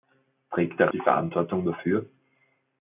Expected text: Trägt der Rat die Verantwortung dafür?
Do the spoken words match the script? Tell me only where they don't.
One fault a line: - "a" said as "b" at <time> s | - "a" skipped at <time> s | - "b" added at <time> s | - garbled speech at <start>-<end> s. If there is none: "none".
- "Rat" skipped at 0.9 s